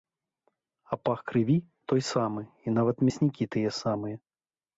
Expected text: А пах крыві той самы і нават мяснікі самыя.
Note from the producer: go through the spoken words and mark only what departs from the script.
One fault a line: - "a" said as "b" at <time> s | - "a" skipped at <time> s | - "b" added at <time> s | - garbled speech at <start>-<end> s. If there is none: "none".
- "тыя" added at 3.6 s